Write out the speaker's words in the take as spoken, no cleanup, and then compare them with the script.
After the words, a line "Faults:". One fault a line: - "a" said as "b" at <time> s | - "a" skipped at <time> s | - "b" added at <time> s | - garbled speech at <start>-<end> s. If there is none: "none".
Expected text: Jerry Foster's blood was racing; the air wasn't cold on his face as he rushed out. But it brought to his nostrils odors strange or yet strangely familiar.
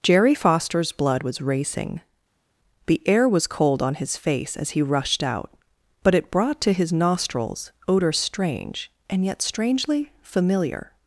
Jerry Foster's blood was racing; the air was cold on his face as he rushed out. But it brought to his nostrils odors strange and yet strangely familiar.
Faults:
- "wasn't" said as "was" at 3.3 s
- "or" said as "and" at 9.1 s